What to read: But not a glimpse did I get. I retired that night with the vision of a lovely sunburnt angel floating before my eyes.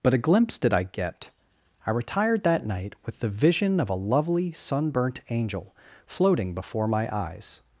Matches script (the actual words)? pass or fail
fail